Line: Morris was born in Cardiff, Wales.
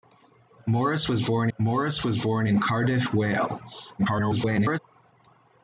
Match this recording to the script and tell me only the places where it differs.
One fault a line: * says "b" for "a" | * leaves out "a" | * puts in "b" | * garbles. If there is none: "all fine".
* puts in "morris was born"
* garbles